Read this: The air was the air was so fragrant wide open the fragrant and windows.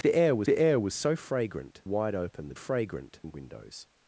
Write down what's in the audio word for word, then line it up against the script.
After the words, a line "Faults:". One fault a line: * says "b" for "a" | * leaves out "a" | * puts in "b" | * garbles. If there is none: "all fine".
The air was the air was so fragrant wide open the fragrant and windows.
Faults:
all fine